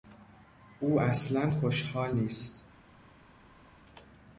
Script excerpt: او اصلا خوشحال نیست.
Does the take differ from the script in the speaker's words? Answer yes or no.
no